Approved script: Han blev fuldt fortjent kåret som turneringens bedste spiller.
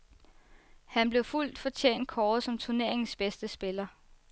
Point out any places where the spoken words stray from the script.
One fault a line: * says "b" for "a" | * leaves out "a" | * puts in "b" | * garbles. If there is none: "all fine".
all fine